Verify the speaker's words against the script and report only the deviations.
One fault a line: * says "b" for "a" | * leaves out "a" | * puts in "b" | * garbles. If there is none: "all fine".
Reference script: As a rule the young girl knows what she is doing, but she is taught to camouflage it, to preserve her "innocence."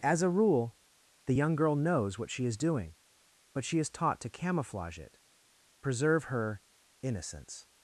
* leaves out "to"